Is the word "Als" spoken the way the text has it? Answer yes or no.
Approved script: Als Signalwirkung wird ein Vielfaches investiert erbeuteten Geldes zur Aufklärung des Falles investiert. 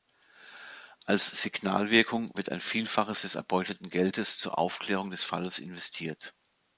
yes